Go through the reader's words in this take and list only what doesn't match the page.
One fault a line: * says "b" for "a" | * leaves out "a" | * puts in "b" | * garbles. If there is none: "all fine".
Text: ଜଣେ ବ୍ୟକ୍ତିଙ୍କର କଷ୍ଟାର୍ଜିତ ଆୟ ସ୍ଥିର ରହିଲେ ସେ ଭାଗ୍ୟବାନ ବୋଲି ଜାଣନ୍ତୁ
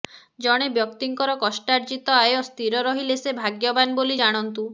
all fine